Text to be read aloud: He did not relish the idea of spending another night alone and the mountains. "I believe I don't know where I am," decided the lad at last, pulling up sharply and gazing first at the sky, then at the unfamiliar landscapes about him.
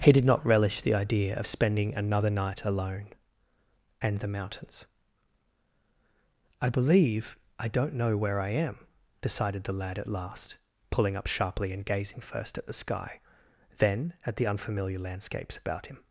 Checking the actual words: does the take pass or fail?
pass